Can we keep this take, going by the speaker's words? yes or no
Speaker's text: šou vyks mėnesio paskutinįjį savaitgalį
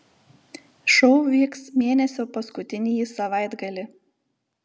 yes